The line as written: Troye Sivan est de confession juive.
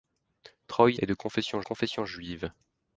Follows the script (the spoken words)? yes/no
no